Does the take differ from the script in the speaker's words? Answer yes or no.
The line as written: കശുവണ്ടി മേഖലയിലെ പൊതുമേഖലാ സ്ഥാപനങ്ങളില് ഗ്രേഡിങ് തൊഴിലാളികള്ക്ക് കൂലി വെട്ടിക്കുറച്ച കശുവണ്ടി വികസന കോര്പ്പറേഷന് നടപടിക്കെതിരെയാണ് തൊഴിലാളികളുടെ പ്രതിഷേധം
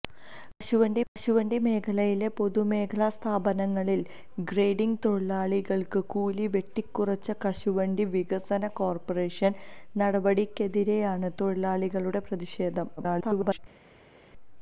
yes